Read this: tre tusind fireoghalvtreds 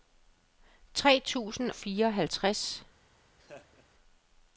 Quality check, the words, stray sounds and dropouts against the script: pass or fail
fail